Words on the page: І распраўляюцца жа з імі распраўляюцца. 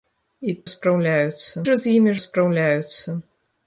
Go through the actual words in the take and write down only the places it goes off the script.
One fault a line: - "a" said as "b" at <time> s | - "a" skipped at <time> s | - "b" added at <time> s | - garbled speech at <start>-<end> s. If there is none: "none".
none